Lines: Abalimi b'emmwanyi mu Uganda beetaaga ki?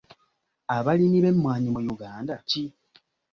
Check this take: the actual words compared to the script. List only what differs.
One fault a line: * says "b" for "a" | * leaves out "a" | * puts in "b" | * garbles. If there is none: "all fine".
* leaves out "beetaaga"